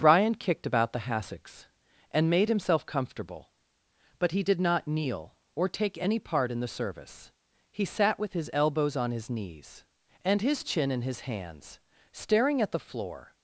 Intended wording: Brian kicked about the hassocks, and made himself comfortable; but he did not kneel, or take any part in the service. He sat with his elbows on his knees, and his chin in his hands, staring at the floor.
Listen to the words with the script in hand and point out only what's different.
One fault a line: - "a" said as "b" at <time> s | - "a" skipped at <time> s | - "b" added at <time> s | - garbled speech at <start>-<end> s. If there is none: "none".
none